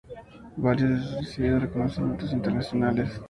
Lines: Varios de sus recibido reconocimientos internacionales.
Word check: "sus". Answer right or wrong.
right